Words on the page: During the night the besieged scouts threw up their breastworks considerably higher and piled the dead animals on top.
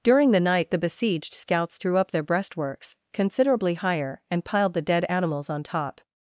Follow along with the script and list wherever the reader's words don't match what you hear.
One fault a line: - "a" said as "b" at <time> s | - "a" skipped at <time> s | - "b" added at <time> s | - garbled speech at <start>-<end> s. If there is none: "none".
none